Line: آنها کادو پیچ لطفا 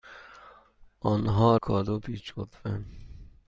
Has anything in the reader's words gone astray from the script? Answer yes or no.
no